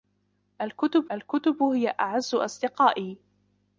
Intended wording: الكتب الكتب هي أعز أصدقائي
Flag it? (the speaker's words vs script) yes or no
no